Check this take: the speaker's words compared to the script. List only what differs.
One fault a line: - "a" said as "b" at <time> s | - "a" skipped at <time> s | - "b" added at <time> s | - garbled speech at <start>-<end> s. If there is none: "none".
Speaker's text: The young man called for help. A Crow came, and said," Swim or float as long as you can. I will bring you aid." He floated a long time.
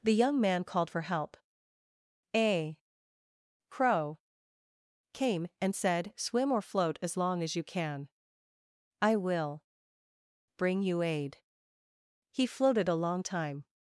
none